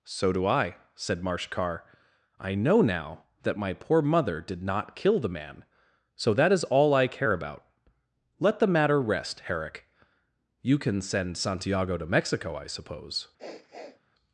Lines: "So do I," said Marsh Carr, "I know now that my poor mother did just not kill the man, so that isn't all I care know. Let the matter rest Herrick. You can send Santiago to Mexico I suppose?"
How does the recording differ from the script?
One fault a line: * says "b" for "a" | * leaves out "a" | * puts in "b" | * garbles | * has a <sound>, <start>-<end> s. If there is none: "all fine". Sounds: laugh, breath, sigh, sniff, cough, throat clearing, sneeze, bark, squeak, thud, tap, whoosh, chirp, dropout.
* leaves out "just"
* says "is" for "isn't"
* says "about" for "know"
* has a sniff, 13.4-14.0 s